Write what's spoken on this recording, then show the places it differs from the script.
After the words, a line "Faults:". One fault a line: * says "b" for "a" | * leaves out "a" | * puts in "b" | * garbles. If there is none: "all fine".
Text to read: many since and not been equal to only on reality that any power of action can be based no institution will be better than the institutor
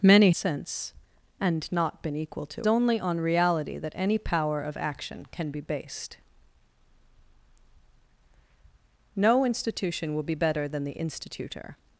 many since and not been equal to only on reality that any power of action can be based no institution will be better than the institutor
Faults:
all fine